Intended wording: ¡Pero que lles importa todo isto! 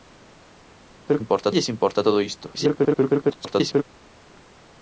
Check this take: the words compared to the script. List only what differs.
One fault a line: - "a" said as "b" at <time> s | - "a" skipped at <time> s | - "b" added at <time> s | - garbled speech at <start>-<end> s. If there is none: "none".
- "que" said as "importa" at 1.2 s
- garbled speech at 2.5-3.8 s